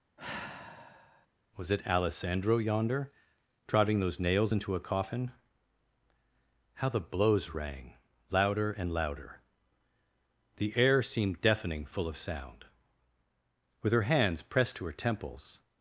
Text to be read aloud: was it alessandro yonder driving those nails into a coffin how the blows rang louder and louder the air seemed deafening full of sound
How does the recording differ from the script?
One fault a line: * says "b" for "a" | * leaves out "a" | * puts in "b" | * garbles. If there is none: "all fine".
* puts in "with her hands pressed to her temples"